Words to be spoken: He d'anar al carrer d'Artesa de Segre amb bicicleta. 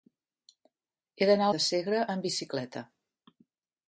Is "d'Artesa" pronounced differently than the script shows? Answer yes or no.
yes